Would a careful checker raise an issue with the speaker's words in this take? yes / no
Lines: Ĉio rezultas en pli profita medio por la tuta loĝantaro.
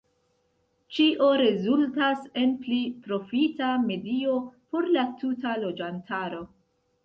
no